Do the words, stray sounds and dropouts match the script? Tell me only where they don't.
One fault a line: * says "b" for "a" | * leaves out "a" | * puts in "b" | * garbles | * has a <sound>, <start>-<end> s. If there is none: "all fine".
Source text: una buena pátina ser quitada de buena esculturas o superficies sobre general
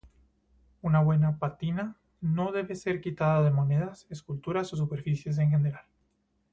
* puts in "no debe"
* says "monedas" for "buena"
* says "en" for "sobre"